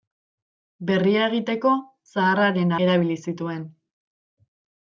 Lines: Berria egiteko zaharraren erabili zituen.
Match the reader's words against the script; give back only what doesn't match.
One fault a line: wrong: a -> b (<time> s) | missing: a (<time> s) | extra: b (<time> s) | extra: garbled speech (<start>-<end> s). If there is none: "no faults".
no faults